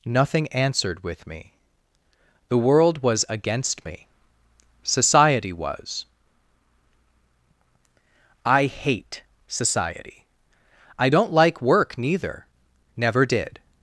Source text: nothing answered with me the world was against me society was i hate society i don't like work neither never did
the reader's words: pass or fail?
pass